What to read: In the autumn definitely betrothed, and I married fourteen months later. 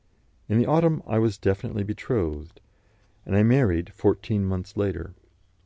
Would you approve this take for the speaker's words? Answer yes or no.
no